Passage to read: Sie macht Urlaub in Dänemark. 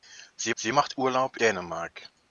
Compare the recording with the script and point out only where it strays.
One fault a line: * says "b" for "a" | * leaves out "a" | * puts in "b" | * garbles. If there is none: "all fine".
* puts in "sie"
* leaves out "in"